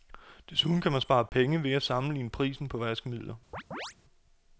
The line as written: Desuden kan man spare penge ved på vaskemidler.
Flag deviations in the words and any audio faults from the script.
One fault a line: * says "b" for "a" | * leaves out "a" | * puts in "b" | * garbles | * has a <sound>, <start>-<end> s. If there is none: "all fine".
* has a dropout, 1.3-1.3 s
* puts in "at sammenligne prisen"
* has a chirp, 3.5-3.9 s